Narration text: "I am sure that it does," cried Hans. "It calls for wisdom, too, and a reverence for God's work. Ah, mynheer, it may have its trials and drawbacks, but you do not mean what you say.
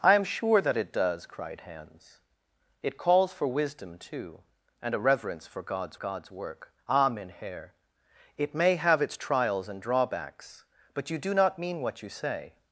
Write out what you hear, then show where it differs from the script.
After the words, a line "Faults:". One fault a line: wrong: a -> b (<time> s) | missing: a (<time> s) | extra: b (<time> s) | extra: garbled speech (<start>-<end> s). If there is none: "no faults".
"I am sure that it does," cried Hans. "It calls for wisdom, too, and a reverence for God's God's work. Ah, mynheer, it may have its trials and drawbacks, but you do not mean what you say.
Faults:
extra: God's (5.9 s)